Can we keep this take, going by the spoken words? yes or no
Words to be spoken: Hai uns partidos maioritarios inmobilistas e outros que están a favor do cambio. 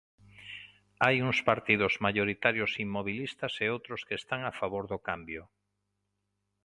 yes